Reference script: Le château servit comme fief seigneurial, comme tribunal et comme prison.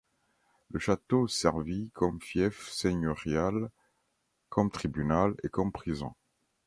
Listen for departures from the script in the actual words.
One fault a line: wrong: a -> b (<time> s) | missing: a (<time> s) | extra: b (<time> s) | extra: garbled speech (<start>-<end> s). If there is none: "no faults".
no faults